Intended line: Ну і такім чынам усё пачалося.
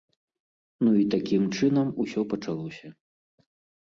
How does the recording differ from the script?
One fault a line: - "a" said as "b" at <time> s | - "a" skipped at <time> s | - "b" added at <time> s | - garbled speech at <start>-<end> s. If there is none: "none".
none